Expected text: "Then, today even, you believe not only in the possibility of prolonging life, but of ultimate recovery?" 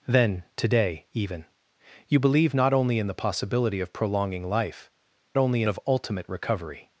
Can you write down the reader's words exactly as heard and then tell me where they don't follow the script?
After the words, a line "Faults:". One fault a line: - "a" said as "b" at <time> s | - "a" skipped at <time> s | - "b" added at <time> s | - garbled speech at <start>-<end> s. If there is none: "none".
"Then, today even, you believe not only in the possibility of prolonging life, only of ultimate recovery?"
Faults:
- "but" said as "only" at 5.4 s